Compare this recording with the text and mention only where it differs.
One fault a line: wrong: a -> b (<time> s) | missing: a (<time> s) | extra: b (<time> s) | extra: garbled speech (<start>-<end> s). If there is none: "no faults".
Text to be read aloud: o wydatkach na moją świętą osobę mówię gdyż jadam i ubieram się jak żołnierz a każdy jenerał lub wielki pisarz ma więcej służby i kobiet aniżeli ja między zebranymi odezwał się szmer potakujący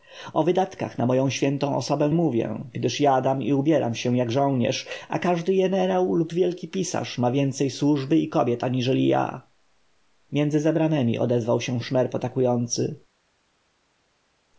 no faults